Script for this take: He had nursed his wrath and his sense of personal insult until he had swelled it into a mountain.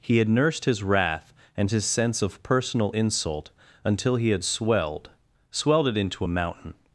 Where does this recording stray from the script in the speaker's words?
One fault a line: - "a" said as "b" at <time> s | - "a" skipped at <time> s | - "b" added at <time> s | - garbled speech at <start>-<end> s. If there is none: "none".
- "swelled" added at 5.5 s